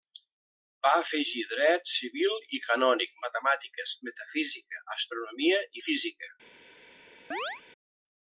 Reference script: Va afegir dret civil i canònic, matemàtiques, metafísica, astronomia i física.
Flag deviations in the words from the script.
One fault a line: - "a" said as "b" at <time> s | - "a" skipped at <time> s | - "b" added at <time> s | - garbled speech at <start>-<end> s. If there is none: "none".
none